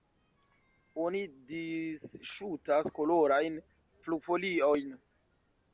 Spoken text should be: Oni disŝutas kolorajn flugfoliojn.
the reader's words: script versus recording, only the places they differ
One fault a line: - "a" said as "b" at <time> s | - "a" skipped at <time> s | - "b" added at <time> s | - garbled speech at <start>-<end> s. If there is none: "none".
none